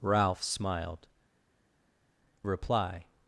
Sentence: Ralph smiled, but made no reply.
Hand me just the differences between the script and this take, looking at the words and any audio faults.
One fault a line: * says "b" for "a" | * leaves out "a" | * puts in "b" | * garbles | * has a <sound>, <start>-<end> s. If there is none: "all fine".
* leaves out "but made no"